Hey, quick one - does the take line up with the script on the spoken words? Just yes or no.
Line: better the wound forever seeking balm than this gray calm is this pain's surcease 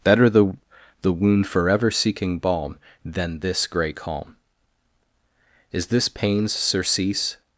no